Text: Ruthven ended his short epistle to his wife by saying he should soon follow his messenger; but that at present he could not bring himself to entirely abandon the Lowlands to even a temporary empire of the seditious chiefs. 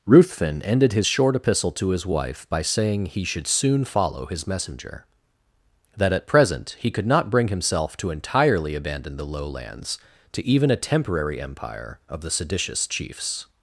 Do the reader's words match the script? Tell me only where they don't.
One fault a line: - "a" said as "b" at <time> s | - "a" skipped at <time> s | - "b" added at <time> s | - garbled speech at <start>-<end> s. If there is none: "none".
- "but" skipped at 5.0 s